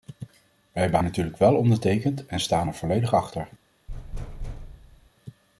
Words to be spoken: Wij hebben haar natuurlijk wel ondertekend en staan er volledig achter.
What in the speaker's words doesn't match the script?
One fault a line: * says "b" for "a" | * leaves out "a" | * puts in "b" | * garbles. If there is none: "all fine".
* leaves out "haar"